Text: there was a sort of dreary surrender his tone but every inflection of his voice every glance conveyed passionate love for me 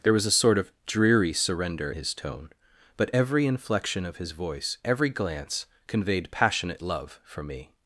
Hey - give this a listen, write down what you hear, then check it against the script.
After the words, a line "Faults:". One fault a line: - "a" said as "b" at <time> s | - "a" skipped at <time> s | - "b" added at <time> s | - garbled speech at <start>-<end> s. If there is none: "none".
there was a sort of dreary surrender his tone but every inflection of his voice every glance conveyed passionate love for me
Faults:
none